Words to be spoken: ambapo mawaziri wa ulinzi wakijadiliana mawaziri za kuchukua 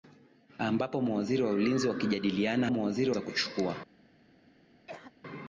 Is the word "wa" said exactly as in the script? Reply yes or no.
yes